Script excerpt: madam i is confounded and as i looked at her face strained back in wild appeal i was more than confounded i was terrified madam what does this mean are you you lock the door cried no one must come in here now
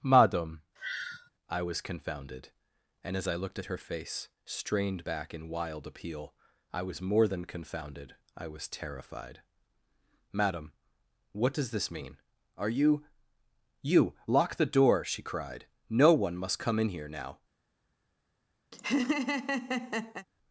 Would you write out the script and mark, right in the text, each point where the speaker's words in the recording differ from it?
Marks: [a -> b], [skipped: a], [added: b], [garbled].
madam i [is -> was] confounded and as i looked at her face strained back in wild appeal i was more than confounded i was terrified madam what does this mean are you you lock the door [added: she] cried no one must come in here now